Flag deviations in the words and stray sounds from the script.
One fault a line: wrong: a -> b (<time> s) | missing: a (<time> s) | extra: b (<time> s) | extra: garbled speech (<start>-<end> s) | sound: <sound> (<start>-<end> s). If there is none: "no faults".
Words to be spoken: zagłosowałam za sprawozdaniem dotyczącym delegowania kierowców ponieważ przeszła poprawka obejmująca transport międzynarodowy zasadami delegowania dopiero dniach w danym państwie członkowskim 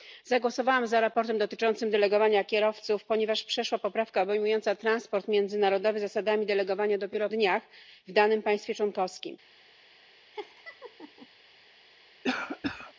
sound: laugh (10.3-11.3 s)
sound: cough (12.2-12.9 s)